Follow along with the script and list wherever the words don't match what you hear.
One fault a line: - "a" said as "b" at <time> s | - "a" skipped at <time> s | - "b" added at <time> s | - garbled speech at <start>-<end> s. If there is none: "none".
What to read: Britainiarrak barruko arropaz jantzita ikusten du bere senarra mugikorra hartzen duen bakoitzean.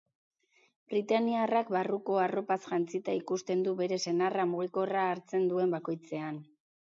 none